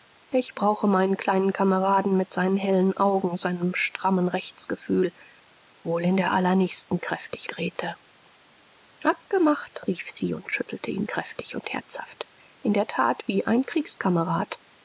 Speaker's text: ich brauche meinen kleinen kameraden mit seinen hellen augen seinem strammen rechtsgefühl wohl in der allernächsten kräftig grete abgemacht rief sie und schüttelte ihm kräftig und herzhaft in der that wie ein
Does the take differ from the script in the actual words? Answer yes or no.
no